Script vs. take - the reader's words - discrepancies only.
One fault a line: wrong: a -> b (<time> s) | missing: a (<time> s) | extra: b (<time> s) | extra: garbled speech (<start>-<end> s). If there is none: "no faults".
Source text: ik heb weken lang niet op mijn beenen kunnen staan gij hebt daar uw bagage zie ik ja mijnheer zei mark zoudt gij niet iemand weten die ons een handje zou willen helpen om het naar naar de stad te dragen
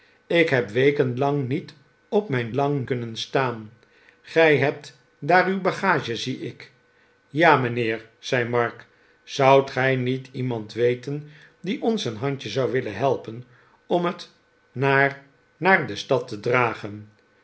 wrong: beenen -> lang (2.5 s)